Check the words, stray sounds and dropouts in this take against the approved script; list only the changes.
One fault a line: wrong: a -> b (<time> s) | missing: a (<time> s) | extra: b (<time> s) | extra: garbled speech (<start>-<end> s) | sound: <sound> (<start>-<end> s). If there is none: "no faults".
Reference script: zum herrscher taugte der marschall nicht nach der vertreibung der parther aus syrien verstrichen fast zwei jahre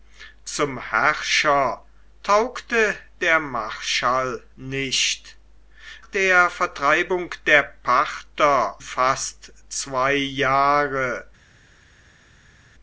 missing: nach (5.4 s)
missing: aus syrien verstrichen (8.8 s)